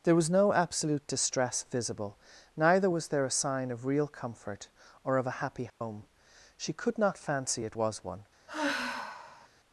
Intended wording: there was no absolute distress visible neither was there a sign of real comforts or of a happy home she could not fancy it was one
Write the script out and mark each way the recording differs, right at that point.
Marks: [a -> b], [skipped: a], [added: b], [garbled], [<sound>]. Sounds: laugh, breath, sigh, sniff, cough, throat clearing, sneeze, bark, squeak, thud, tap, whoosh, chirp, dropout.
there was no absolute distress visible neither was there a sign of real [comforts -> comfort] or of a happy home [dropout] she could not fancy it was one [sigh]